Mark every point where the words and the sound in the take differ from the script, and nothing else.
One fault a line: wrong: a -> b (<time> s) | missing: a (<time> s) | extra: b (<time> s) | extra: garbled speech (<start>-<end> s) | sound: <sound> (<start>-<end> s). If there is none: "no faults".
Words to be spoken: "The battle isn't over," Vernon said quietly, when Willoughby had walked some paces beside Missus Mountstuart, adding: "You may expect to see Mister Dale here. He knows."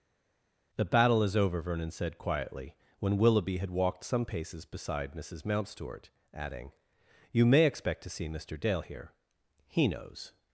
wrong: isn't -> is (1.2 s)